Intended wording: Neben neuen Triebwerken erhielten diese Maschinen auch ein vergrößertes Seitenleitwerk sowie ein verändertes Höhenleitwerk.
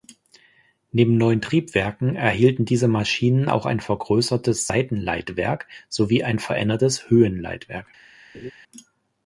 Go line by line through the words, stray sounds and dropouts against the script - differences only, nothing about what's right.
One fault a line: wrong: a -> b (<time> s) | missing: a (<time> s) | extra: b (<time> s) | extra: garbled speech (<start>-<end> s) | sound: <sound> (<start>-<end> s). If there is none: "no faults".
sound: laugh (8.3-8.5 s)